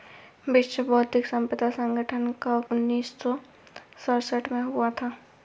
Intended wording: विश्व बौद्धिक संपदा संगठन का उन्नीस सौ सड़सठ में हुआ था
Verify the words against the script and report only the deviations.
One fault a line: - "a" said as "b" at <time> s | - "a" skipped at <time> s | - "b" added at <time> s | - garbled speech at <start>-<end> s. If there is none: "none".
none